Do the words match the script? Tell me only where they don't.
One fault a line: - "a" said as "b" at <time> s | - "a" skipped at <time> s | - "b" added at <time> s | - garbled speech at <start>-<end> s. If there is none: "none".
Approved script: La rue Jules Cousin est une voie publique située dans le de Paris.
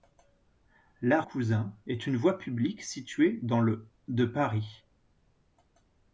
- "rue Jules" skipped at 1.2 s